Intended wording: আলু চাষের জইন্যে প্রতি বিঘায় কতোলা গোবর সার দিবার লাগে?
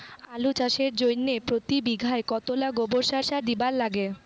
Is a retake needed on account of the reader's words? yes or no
yes